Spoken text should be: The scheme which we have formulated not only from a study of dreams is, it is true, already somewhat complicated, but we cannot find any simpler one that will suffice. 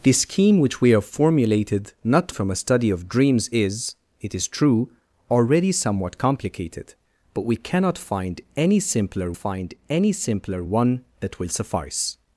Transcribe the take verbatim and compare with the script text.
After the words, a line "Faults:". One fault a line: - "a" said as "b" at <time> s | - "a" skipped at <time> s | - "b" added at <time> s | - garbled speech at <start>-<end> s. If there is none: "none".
The scheme which we have formulated not from a study of dreams is, it is true, already somewhat complicated, but we cannot find any simpler find any simpler one that will suffice.
Faults:
- "only" skipped at 2.3 s
- "find any simpler" added at 9.3 s